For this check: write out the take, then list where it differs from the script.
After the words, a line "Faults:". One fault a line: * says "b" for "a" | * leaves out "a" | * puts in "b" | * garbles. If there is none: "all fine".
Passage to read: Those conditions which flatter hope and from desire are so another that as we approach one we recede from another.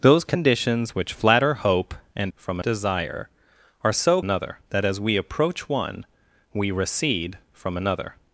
Those conditions which flatter hope and from desire are so another that as we approach one we recede from another.
Faults:
all fine